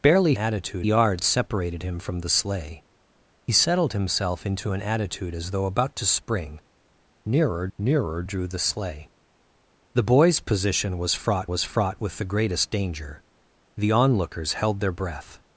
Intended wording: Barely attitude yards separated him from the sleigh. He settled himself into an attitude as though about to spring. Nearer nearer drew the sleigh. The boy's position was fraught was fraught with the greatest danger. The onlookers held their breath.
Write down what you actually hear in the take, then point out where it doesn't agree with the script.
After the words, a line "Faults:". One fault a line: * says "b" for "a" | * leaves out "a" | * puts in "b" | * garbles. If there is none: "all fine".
Barely attitude yards separated him from the sleigh. He settled himself into an attitude as though about to spring. Nearer nearer drew the sleigh. The boy's position was fraught was fraught with the greatest danger. The onlookers held their breath.
Faults:
all fine